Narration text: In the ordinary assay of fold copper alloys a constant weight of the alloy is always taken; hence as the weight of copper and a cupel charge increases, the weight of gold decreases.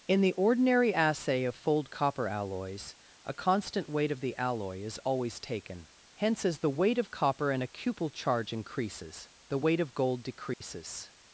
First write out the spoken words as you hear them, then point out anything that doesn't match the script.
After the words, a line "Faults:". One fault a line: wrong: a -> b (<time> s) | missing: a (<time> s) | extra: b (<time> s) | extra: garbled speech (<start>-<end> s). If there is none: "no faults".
In the ordinary assay of fold copper alloys a constant weight of the alloy is always taken; hence as the weight of copper and a cupel charge increases, the weight of gold decreases.
Faults:
no faults